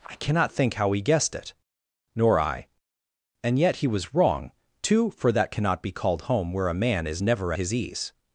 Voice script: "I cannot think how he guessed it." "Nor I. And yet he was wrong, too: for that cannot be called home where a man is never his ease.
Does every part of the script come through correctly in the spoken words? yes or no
yes